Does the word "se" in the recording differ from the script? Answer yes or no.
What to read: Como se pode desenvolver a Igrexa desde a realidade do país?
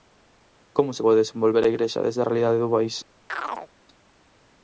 no